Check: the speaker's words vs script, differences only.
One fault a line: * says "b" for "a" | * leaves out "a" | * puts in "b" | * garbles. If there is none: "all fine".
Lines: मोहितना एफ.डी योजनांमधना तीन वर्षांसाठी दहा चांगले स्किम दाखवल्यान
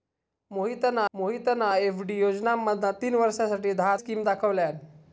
* puts in "मोहितना"
* leaves out "चांगले"